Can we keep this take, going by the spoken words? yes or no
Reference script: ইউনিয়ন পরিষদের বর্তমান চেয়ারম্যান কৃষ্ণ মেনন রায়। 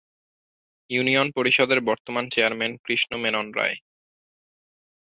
yes